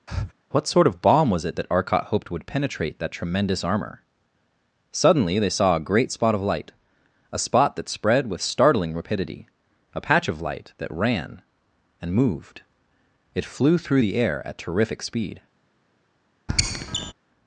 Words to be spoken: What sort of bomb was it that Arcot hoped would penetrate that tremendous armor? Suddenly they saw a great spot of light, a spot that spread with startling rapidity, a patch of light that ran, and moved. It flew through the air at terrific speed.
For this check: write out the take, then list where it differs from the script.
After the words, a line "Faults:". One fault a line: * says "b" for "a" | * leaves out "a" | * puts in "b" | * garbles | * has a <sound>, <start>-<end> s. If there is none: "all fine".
What sort of bomb was it that Arcot hoped would penetrate that tremendous armor? Suddenly they saw a great spot of light, a spot that spread with startling rapidity, a patch of light that ran, and moved. It flew through the air at terrific speed.
Faults:
* has a breath, 0.1-0.3 s
* has a squeak, 16.5-17.1 s